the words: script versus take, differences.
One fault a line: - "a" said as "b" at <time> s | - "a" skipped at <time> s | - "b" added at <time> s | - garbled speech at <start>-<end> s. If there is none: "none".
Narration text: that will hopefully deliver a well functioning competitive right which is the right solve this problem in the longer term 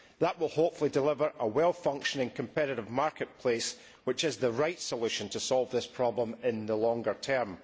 - "right" said as "marketplace" at 2.9 s
- "solution to" added at 4.8 s